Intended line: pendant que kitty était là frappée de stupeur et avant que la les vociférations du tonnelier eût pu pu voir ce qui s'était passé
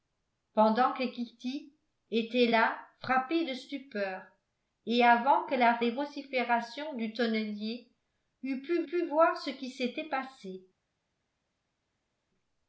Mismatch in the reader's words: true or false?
false